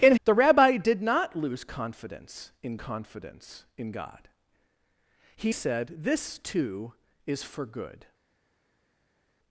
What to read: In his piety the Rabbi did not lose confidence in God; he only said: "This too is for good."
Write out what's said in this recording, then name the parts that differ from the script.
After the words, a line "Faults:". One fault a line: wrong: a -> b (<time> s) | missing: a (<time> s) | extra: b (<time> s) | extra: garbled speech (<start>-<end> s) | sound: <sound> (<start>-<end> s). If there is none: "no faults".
In the Rabbi did not lose confidence in confidence in God; he said: "This too is for good."
Faults:
missing: his piety (0.1 s)
extra: confidence in (2.7 s)
missing: only (5.5 s)